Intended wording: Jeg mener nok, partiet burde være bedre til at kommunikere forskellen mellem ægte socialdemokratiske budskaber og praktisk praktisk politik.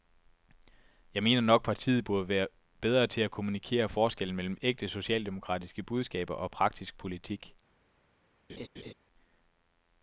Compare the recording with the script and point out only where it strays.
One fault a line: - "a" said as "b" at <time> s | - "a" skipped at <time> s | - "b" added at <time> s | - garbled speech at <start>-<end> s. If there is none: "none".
- "praktisk" skipped at 7.0 s